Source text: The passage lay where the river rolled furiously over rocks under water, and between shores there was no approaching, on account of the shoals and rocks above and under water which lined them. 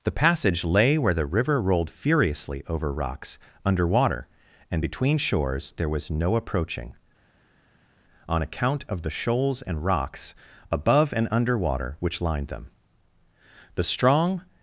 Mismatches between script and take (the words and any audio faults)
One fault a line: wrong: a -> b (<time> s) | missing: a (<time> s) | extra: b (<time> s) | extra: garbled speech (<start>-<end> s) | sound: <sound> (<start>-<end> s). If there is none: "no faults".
extra: The strong (13.7 s)